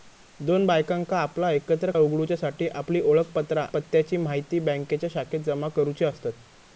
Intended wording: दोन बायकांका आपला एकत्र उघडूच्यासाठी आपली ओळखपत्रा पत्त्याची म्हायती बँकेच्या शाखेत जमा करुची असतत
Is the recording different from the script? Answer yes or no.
no